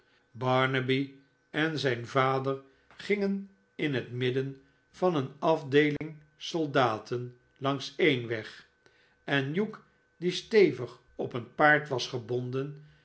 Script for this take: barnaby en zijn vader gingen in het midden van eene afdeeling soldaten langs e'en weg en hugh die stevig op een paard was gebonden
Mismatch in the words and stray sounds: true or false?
true